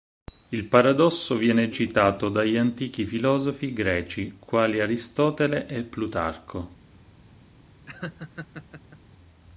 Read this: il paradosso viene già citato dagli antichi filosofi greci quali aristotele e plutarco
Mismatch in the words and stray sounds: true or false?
true